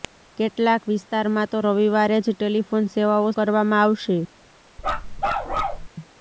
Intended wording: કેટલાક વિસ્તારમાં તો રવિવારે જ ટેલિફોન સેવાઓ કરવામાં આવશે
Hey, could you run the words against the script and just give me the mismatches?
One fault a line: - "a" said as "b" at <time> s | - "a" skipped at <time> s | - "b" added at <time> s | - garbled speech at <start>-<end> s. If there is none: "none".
none